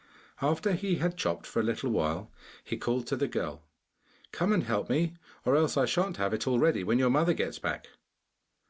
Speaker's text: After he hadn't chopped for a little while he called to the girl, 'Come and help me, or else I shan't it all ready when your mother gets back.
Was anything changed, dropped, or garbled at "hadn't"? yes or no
yes